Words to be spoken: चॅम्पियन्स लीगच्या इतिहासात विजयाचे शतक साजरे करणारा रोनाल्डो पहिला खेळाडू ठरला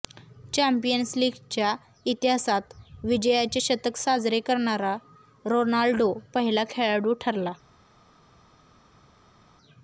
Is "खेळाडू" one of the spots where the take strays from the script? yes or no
no